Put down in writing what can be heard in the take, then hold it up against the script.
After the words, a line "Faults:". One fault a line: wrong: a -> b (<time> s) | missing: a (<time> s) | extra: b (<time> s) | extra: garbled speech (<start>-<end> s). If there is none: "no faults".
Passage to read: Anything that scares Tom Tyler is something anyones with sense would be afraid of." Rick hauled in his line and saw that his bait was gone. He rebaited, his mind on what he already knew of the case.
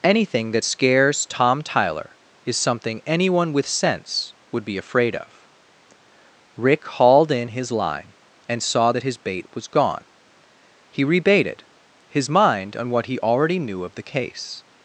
Anything that scares Tom Tyler is something anyone with sense would be afraid of." Rick hauled in his line and saw that his bait was gone. He rebaited, his mind on what he already knew of the case.
Faults:
wrong: anyones -> anyone (3.0 s)